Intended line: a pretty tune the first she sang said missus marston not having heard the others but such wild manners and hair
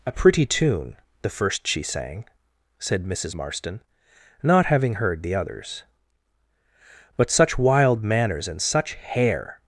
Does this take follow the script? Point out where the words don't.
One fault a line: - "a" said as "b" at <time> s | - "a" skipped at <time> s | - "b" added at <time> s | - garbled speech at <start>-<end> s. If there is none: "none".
- "such" added at 8.6 s